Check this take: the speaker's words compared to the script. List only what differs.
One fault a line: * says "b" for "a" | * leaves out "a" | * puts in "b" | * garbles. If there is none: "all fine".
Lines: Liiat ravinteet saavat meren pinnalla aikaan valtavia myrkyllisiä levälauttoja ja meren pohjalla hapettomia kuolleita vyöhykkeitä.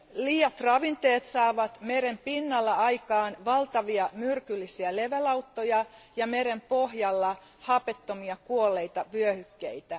all fine